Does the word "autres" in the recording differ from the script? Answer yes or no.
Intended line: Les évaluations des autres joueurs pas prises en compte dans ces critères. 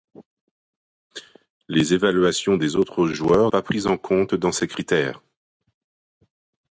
no